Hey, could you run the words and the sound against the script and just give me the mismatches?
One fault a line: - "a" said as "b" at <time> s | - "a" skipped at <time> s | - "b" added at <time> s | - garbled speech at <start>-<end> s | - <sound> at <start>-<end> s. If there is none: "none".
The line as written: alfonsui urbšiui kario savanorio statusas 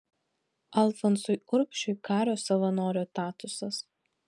none